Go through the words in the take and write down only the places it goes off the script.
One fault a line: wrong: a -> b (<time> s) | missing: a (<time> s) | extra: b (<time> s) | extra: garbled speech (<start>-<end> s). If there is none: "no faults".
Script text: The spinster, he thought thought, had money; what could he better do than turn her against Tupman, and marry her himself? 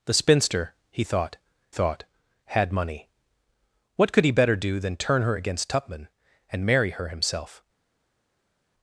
no faults